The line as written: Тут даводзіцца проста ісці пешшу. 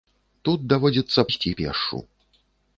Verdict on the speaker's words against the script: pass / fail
fail